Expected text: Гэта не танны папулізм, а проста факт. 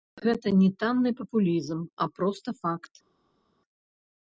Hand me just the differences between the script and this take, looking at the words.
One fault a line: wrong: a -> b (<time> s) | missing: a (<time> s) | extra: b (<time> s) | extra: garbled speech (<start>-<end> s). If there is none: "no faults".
no faults